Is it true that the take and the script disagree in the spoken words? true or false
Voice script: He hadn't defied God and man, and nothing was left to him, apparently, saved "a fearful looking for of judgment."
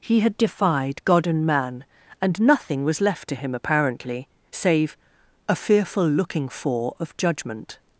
true